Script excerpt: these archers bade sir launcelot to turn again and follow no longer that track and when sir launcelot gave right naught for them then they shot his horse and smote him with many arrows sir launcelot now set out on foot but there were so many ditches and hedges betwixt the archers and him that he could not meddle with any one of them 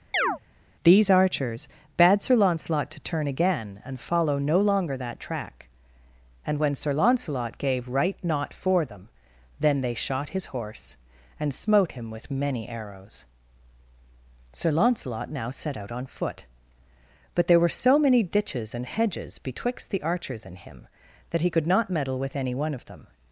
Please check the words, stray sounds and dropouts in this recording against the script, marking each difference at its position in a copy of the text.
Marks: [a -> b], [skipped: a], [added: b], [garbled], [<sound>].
[chirp] these archers bade sir launcelot to turn again and follow no longer that track and when sir launcelot gave right naught for them then they shot his horse and smote him with many arrows sir launcelot now set out on foot but there were so many ditches and hedges betwixt the archers and him that he could not meddle with any one of them